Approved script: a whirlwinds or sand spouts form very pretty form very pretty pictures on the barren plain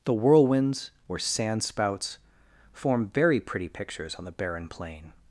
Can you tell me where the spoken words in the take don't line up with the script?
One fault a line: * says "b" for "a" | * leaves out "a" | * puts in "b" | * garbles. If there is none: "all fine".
* says "the" for "a"
* leaves out "form very pretty"